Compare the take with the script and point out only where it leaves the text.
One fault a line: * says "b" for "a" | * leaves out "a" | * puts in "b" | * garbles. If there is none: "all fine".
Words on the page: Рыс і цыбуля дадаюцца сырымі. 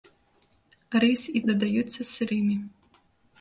* leaves out "цыбуля"